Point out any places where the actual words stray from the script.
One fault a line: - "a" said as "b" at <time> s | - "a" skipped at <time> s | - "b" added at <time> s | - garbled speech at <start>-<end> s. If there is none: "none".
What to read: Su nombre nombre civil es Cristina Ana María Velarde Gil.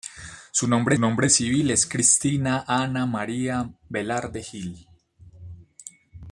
none